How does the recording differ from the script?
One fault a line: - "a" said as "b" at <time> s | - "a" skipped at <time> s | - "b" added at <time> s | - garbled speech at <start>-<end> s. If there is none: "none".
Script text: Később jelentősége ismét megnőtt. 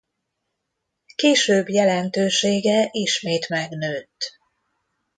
none